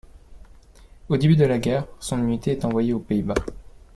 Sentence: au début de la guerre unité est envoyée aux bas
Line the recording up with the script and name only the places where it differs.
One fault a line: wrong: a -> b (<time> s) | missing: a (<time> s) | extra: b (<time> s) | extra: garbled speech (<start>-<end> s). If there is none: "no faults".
extra: son (2.0 s)
extra: pays (3.0 s)